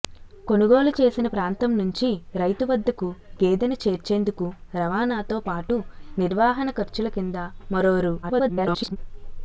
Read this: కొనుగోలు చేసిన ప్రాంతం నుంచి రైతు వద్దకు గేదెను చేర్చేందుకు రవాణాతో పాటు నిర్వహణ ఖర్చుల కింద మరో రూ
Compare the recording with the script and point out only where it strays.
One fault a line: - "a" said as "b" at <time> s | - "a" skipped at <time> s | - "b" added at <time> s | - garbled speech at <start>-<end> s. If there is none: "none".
- garbled speech at 8.2-9.0 s